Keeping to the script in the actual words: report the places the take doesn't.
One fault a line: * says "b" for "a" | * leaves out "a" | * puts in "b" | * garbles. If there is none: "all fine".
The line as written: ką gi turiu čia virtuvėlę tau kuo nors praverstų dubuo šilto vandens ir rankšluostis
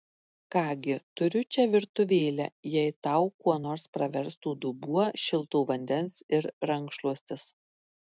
* puts in "jei"